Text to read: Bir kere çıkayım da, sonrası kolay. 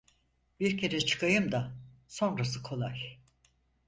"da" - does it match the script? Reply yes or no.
yes